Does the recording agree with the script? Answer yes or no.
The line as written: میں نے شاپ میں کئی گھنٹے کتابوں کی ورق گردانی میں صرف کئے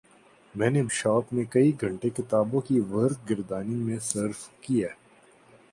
yes